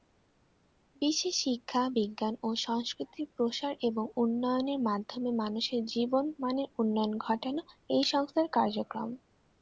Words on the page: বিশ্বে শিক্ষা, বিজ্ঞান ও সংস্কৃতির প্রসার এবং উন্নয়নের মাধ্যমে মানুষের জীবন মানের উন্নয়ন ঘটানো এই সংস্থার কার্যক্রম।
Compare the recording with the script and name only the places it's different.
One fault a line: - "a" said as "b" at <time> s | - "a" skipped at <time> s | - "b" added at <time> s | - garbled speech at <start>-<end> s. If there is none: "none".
none